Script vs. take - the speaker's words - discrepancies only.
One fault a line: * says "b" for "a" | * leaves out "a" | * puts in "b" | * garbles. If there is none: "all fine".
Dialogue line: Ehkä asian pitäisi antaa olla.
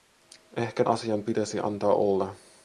all fine